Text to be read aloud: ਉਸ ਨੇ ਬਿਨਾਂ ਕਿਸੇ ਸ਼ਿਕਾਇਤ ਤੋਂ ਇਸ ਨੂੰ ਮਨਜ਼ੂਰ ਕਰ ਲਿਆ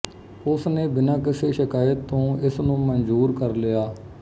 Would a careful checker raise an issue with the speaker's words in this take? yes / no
no